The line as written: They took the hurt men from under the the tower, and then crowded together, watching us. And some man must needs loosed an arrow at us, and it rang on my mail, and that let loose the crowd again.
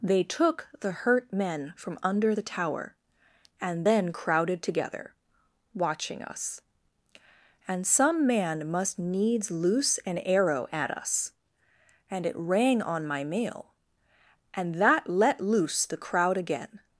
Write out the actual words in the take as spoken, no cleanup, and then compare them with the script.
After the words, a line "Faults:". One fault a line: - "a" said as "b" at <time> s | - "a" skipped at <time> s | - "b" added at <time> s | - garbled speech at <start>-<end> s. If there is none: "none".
They took the hurt men from under the tower, and then crowded together, watching us. And some man must needs loose an arrow at us, and it rang on my mail, and that let loose the crowd again.
Faults:
- "the" skipped at 2.4 s
- "loosed" said as "loose" at 9.5 s